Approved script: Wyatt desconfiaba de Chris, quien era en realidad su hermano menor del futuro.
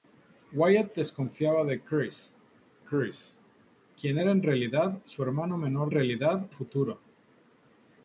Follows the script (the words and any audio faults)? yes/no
no